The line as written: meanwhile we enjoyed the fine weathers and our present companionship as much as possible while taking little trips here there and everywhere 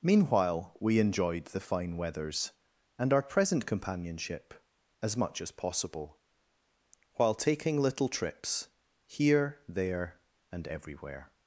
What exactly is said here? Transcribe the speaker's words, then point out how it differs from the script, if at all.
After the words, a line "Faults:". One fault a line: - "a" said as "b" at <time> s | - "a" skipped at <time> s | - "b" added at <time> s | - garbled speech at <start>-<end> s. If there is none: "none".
meanwhile we enjoyed the fine weathers and our present companionship as much as possible while taking little trips here there and everywhere
Faults:
none